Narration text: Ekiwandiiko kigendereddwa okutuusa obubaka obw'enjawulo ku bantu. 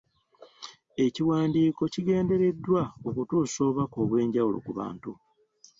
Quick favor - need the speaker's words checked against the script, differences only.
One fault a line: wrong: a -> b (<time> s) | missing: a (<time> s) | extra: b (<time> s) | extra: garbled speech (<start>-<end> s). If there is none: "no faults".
no faults